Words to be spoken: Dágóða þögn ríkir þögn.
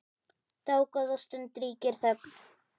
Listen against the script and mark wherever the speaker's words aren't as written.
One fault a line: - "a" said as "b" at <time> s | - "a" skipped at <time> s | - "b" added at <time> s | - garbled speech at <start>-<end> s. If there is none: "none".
- "þögn" said as "stund" at 1.3 s